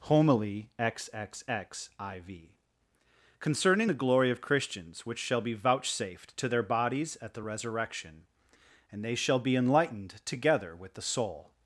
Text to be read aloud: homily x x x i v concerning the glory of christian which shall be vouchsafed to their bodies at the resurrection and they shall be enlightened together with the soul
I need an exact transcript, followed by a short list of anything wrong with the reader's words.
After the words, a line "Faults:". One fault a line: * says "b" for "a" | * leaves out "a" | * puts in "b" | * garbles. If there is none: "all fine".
homily x x x i v concerning the glory of christians which shall be vouchsafed to their bodies at the resurrection and they shall be enlightened together with the soul
Faults:
* says "christians" for "christian"